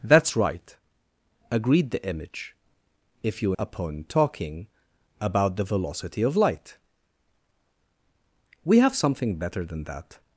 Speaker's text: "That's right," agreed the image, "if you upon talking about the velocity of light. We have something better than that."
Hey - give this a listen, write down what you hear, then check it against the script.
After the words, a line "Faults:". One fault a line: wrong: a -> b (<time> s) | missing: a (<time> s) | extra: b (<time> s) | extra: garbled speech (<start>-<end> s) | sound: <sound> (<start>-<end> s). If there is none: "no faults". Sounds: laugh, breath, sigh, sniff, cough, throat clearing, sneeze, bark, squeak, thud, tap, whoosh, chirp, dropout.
"That's right," agreed the image, "if you upon talking about the velocity of light. We have something better than that."
Faults:
no faults